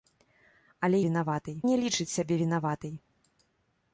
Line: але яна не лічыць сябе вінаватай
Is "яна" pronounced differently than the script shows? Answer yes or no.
yes